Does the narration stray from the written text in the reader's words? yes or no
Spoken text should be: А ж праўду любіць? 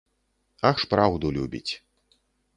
no